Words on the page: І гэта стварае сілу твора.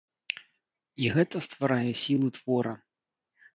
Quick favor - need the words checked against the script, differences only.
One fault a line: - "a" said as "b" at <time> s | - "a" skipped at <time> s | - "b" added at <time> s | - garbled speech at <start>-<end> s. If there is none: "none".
none